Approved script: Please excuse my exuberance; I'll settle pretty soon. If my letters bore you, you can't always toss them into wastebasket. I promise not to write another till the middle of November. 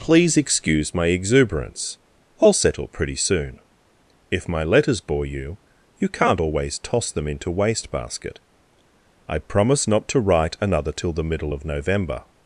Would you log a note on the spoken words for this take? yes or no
no